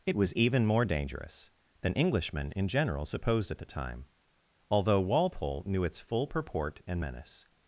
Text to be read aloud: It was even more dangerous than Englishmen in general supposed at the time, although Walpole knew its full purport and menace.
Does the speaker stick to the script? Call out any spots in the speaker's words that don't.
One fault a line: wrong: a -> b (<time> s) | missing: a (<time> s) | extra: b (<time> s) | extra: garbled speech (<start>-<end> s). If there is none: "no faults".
no faults